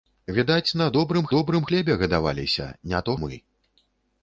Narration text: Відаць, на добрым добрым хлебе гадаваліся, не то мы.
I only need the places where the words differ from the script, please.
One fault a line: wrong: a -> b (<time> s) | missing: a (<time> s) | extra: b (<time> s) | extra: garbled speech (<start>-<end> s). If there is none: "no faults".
no faults